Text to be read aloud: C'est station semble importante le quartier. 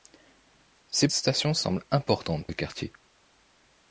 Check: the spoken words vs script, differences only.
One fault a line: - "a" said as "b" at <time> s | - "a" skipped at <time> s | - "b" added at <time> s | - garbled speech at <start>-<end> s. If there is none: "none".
none